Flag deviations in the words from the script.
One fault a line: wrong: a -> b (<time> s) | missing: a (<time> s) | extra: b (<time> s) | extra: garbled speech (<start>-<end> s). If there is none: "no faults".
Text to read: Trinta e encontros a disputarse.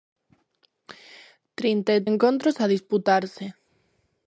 no faults